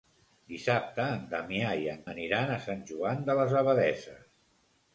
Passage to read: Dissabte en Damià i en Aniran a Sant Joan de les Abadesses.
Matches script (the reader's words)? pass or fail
pass